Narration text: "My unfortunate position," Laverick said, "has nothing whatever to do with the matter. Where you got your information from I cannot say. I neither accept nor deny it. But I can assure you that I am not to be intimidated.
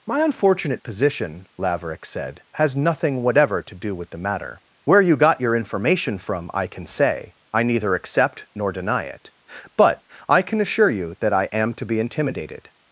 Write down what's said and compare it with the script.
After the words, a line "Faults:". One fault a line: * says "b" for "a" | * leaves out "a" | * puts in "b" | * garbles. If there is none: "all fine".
"My unfortunate position," Laverick said, "has nothing whatever to do with the matter. Where you got your information from I can say. I neither accept nor deny it. But I can assure you that I am to be intimidated.
Faults:
* says "can" for "cannot"
* leaves out "not"